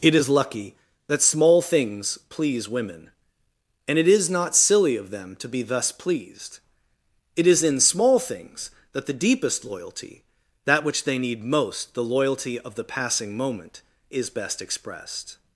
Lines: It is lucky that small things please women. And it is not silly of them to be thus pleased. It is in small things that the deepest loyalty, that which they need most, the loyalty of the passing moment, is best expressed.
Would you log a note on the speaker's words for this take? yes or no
no